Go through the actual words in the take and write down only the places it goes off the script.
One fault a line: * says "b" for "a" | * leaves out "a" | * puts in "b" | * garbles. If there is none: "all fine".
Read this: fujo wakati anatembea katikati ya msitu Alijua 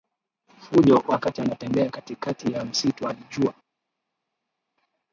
all fine